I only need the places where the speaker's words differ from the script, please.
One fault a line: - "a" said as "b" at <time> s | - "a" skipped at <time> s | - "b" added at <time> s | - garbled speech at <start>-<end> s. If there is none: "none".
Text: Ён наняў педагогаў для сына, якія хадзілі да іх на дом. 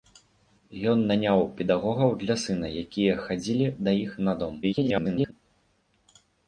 - garbled speech at 4.6-5.3 s